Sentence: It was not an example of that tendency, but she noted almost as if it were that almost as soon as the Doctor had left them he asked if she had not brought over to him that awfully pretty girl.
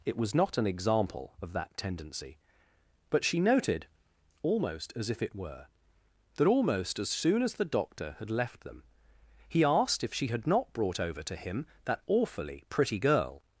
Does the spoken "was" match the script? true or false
true